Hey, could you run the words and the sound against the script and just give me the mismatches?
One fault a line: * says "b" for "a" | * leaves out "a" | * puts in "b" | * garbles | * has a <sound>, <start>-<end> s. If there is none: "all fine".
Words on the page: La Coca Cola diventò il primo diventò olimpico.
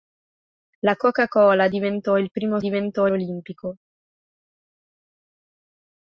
all fine